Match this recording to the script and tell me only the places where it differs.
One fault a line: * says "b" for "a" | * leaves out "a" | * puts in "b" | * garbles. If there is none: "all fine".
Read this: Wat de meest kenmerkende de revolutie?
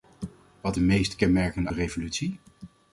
all fine